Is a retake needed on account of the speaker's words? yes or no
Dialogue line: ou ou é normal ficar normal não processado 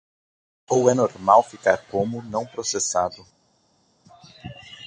yes